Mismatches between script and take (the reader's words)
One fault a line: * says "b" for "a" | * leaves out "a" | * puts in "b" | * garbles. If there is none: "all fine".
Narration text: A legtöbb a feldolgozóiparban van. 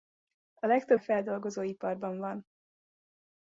all fine